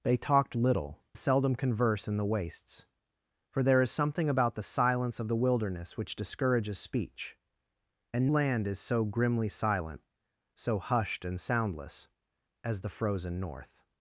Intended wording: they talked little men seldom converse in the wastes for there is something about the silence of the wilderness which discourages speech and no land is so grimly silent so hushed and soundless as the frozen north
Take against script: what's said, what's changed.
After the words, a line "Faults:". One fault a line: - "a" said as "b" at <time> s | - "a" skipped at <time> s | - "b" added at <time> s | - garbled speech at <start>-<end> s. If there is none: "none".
they talked little seldom converse in the wastes for there is something about the silence of the wilderness which discourages speech and land is so grimly silent so hushed and soundless as the frozen north
Faults:
- "men" skipped at 1.0 s
- "no" skipped at 8.3 s